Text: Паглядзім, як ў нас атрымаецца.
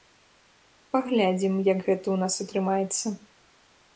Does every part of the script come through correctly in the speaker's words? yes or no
no